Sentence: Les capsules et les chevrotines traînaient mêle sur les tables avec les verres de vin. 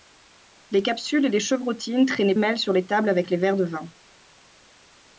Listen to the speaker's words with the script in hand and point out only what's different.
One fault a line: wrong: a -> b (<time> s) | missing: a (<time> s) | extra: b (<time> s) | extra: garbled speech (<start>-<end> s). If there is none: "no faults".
no faults